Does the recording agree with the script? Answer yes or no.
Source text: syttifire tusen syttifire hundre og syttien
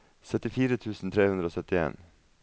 no